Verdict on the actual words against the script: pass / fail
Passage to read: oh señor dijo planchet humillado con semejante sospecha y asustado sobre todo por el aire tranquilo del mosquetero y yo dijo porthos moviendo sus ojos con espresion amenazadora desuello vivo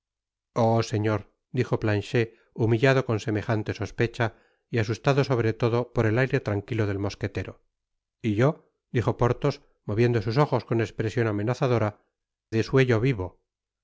pass